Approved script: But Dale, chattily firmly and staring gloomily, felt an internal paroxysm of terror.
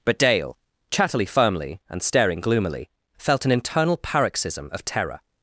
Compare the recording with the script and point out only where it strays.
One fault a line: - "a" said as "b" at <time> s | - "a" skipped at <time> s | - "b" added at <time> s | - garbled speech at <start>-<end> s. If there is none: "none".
none